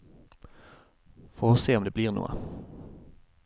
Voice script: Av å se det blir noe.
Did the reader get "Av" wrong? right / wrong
wrong